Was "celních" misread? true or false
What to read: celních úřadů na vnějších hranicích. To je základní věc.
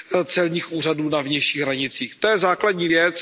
false